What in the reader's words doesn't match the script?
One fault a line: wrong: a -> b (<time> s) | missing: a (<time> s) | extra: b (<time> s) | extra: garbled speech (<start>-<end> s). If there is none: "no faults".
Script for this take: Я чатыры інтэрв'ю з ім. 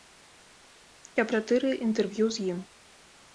no faults